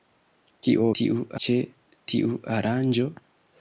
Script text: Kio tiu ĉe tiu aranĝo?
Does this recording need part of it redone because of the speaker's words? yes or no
no